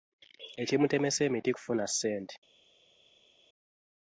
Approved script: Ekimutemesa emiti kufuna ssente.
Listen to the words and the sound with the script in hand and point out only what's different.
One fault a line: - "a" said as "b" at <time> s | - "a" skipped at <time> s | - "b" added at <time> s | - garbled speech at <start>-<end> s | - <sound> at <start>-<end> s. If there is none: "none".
none